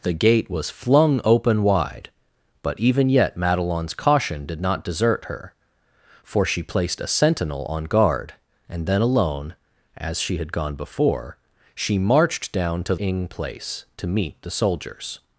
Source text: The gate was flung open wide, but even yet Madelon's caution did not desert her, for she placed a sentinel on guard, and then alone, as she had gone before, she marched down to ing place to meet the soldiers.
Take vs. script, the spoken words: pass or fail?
pass